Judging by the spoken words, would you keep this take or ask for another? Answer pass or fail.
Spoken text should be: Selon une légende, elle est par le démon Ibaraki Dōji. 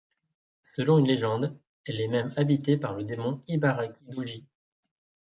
fail